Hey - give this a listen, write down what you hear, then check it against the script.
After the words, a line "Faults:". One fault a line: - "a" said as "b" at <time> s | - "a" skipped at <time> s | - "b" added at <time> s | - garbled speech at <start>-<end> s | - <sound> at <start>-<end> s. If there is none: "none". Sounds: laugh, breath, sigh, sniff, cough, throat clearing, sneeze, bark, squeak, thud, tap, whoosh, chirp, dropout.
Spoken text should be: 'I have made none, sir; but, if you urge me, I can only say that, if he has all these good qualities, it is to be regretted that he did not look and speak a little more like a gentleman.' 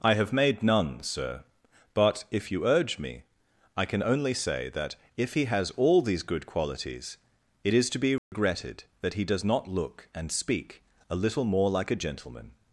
'I have made none, sir; but, if you urge me, I can only say that, if he has all these good qualities, it is to be regretted that he does not look and speak a little more like a gentleman.'
Faults:
- dropout at 8.2-8.3 s
- "did" said as "does" at 9.2 s